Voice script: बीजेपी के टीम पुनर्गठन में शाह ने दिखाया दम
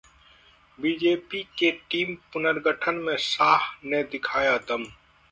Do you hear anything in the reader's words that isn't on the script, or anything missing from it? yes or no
no